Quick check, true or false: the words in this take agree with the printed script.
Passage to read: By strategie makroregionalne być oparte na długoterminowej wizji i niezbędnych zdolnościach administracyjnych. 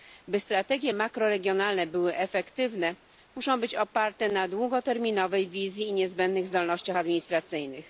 false